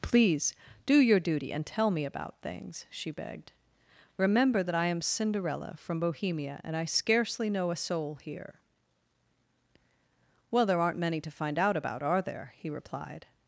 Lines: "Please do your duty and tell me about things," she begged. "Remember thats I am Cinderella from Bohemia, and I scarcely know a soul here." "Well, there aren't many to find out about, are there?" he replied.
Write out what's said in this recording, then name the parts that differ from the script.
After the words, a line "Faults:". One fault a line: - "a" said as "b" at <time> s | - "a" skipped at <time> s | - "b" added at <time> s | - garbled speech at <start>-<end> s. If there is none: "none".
"Please do your duty and tell me about things," she begged. "Remember that I am Cinderella from Bohemia, and I scarcely know a soul here." "Well, there aren't many to find out about, are there?" he replied.
Faults:
- "thats" said as "that" at 4.6 s